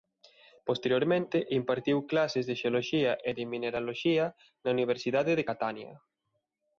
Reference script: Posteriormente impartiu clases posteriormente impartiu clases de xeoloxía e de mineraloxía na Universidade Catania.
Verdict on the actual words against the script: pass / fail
fail